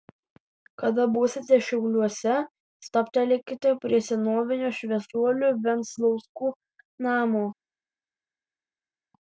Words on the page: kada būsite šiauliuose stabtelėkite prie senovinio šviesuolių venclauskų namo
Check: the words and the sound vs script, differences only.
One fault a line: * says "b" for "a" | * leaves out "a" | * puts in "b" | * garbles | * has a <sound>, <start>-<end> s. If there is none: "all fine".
all fine